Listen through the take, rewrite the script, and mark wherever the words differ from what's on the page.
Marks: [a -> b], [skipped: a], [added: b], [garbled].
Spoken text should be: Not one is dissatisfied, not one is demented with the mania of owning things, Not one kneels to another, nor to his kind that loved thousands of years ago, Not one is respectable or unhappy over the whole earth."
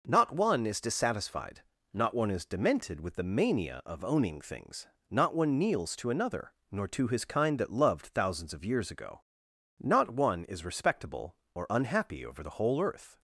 Not one is dissatisfied, not one is demented with the mania of owning things, Not one kneels to another, nor to his kind that loved thousands of years ago, Not one is respectable or unhappy over the whole earth."